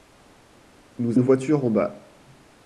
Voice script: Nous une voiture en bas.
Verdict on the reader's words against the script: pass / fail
pass